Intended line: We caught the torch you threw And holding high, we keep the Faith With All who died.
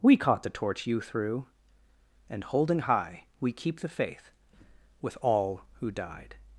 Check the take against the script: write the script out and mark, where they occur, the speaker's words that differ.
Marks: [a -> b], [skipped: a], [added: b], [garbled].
We caught the torch you threw And holding high, we keep the Faith With All who died.